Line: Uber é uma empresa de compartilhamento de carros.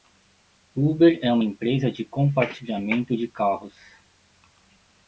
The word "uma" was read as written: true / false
true